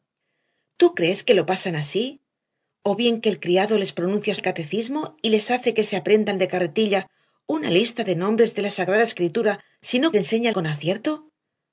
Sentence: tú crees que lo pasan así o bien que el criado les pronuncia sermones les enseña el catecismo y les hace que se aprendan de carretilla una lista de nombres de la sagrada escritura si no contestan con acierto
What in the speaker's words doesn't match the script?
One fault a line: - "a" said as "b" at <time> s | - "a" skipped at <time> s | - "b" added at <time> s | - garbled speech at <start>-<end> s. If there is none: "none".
- "sermones les enseña" skipped at 4.3 s
- "contestan" said as "enseña" at 10.1 s